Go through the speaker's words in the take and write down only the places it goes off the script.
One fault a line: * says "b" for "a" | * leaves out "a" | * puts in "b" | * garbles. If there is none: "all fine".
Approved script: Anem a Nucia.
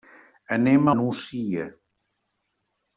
all fine